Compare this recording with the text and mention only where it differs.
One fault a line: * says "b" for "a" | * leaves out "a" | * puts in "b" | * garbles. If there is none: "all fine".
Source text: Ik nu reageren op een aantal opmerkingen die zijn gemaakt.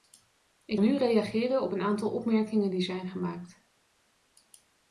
all fine